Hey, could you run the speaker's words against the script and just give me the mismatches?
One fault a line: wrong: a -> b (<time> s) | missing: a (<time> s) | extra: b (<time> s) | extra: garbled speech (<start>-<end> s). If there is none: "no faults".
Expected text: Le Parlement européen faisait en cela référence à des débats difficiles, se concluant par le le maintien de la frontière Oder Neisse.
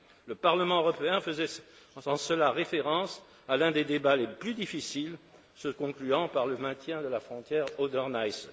extra: l'un (3.6 s)
extra: les plus (4.2 s)
missing: le (6.6 s)